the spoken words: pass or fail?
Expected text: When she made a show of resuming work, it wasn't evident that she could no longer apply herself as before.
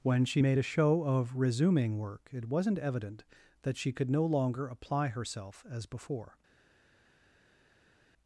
pass